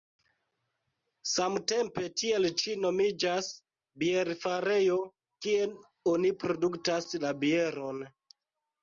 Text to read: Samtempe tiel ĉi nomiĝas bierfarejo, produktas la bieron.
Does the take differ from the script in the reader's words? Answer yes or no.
yes